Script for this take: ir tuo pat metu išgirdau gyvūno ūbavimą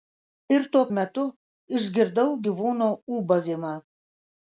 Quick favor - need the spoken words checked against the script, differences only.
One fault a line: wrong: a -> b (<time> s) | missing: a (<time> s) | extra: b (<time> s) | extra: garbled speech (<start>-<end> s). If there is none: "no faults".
missing: pat (0.8 s)